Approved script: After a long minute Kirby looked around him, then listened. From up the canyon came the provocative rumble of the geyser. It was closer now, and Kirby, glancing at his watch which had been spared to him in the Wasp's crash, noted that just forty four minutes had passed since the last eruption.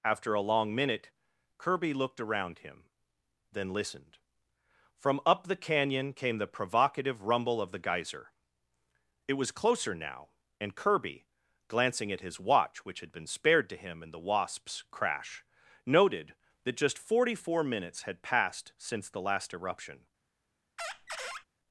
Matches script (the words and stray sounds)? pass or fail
fail